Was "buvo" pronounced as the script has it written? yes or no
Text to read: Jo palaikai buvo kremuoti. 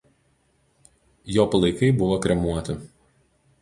yes